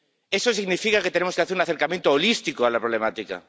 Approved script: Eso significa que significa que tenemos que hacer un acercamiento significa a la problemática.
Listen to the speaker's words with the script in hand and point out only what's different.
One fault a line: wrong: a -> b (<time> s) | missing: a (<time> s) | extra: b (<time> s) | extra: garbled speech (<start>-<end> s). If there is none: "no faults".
missing: significa que (1.1 s)
wrong: significa -> holístico (2.1 s)